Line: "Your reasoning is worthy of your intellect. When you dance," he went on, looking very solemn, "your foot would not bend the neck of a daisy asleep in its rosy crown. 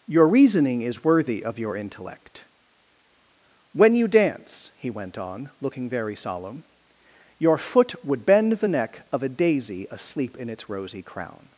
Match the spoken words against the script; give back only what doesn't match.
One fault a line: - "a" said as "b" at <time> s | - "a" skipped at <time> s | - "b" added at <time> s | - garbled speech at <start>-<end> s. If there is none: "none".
- "not" skipped at 8.2 s